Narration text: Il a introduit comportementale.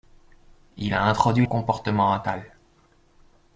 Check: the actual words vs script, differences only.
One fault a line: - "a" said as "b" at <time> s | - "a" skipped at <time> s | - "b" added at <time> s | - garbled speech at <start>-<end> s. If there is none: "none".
none